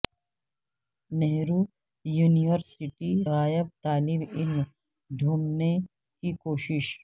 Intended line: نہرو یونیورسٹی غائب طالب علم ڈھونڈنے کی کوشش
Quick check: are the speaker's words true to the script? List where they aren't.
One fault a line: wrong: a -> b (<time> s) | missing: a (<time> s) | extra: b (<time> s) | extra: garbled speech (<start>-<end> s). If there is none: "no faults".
no faults